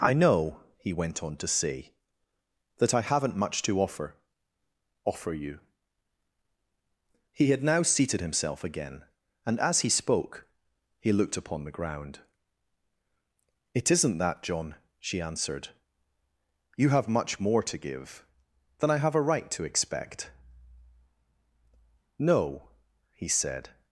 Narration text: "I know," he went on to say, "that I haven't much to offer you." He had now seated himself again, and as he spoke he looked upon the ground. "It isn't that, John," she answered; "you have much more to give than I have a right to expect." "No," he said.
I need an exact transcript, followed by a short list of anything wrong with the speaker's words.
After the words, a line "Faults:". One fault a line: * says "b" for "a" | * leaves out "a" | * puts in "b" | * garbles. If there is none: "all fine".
"I know," he went on to say, "that I haven't much to offer offer you." He had now seated himself again, and as he spoke he looked upon the ground. "It isn't that, John," she answered; "you have much more to give than I have a right to expect." "No," he said.
Faults:
* puts in "offer"